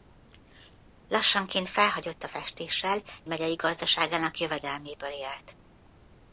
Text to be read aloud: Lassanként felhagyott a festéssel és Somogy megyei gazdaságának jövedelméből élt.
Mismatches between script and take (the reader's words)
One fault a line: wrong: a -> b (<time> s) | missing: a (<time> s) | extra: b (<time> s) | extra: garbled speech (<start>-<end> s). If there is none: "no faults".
missing: és Somogy (3.0 s)